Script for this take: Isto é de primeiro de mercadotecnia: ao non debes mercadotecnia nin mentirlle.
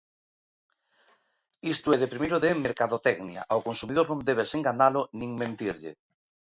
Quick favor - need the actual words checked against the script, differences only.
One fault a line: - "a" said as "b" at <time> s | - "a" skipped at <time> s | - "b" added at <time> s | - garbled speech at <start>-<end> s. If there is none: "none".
- "consumidor" added at 3.7 s
- "mercadotecnia" said as "enganalo" at 4.6 s